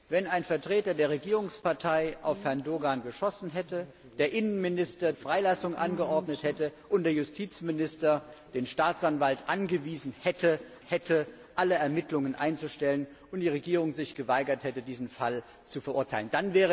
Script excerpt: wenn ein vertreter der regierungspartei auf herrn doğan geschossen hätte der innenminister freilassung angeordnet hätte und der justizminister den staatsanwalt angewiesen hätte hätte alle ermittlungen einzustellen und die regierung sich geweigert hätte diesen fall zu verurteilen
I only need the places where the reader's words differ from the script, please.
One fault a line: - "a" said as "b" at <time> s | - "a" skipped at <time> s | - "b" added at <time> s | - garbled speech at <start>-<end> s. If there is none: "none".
none